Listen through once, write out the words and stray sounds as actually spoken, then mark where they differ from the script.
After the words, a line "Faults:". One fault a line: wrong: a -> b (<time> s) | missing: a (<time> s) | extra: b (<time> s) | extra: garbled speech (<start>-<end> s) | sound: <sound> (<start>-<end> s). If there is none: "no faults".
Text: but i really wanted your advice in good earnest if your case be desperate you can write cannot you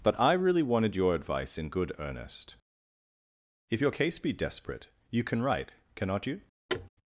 but i really wanted your advice in good earnest if your case be desperate you can write cannot you
Faults:
sound: thud (6.7-6.9 s)